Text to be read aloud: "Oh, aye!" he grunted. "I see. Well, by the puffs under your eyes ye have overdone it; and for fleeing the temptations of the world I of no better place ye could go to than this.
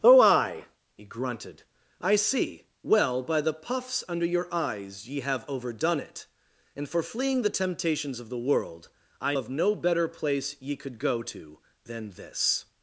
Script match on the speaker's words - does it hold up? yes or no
yes